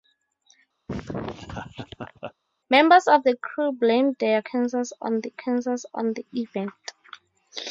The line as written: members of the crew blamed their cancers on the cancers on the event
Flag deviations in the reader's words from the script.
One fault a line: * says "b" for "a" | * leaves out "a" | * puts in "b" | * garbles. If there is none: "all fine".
all fine